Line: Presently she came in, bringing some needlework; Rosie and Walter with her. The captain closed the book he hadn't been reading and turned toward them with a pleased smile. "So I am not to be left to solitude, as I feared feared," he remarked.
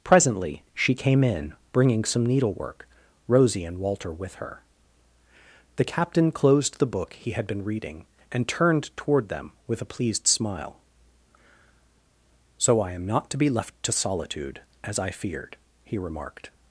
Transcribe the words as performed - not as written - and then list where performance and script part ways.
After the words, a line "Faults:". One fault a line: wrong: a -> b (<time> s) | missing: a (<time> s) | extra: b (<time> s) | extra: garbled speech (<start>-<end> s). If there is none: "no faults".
Presently she came in, bringing some needlework; Rosie and Walter with her. The captain closed the book he had been reading and turned toward them with a pleased smile. "So I am not to be left to solitude, as I feared," he remarked.
Faults:
wrong: hadn't -> had (7.3 s)
missing: feared (15.6 s)